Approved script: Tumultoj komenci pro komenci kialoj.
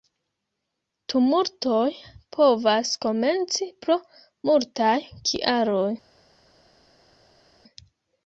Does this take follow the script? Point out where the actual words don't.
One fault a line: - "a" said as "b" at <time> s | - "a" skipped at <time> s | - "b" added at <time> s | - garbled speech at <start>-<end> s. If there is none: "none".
- "povas" added at 2.4 s
- "komenci" said as "multaj" at 4.5 s